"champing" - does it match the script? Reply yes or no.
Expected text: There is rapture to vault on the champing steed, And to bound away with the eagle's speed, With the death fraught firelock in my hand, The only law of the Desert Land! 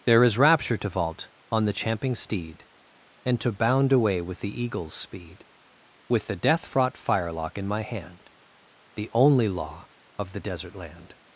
yes